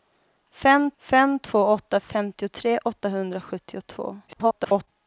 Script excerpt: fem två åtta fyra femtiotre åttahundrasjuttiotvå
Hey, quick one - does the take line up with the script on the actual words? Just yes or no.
no